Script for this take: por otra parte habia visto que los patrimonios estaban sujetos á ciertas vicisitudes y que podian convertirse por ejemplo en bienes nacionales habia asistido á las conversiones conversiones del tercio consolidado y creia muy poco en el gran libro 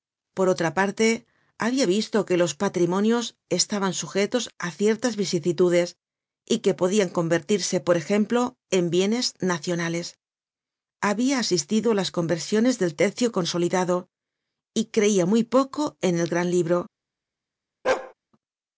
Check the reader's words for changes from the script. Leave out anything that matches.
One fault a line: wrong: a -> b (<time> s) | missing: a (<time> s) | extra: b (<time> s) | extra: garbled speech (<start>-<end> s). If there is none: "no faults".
missing: conversiones (12.8 s)